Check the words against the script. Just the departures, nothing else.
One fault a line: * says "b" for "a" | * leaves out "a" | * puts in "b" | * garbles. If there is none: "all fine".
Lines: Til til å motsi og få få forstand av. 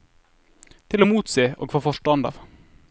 * leaves out "til"
* leaves out "få"